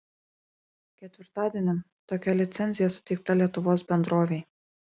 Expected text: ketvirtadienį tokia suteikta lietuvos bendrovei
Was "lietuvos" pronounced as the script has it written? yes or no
yes